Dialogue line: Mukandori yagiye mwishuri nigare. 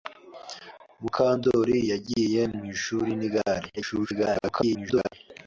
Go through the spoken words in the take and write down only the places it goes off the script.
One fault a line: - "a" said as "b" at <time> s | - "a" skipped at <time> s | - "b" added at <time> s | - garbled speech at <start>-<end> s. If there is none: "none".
- garbled speech at 3.8-5.1 s